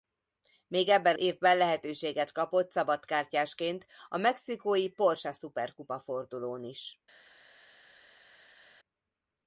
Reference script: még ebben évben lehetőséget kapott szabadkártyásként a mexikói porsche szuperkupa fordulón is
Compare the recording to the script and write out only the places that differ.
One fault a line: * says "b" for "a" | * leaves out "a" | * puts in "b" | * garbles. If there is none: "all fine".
all fine